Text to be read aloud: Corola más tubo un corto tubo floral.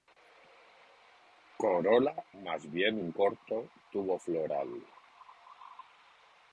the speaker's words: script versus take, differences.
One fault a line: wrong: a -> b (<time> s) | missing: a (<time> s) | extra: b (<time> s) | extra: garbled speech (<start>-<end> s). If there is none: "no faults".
wrong: tubo -> bien (2.7 s)